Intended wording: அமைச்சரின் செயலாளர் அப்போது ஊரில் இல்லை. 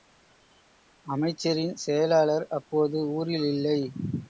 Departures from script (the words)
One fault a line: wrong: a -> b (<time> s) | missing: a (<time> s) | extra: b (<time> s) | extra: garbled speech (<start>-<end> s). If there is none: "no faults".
no faults